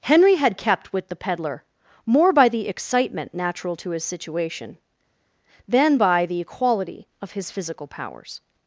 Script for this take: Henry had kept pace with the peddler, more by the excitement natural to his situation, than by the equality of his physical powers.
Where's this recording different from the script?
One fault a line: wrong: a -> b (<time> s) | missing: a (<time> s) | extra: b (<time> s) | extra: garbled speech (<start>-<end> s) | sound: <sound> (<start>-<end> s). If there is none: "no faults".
missing: pace (0.9 s)